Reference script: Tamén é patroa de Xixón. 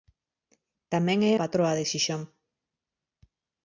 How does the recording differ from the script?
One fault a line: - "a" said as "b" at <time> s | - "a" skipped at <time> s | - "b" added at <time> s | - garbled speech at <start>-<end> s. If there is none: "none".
none